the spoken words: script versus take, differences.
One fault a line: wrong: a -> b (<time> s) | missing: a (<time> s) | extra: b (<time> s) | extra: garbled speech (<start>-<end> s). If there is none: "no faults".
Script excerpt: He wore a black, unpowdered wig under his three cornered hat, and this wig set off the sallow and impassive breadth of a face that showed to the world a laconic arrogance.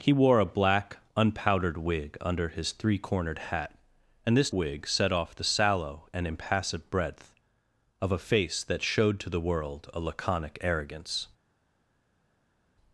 no faults